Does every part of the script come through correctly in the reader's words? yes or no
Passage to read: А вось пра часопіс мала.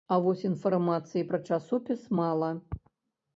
no